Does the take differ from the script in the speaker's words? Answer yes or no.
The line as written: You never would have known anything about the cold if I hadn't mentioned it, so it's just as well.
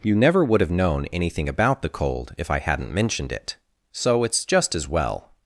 no